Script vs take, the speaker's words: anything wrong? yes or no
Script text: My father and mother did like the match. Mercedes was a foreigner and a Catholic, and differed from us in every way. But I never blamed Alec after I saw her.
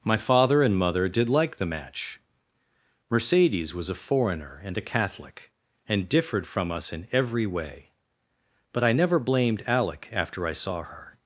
no